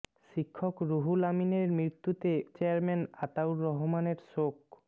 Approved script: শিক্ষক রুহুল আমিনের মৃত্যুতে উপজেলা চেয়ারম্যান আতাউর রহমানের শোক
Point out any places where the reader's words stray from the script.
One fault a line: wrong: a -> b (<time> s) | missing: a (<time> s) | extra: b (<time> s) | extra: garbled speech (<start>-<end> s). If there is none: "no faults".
missing: উপজেলা (2.3 s)